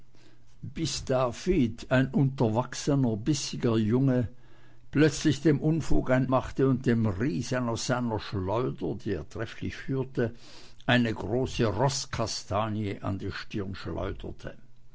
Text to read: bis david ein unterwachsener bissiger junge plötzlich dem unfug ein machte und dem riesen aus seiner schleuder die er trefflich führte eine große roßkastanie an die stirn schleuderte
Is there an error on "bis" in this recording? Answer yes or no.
no